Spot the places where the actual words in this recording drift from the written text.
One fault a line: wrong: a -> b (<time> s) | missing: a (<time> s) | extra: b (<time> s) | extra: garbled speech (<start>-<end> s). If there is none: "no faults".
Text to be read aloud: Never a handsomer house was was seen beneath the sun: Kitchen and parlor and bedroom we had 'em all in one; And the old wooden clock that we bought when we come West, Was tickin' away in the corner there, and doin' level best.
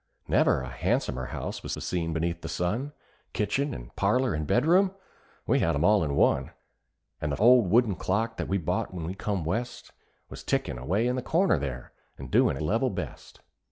no faults